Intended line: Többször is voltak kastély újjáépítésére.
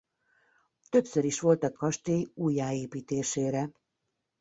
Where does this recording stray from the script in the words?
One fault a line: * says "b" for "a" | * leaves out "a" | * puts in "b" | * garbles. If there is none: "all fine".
all fine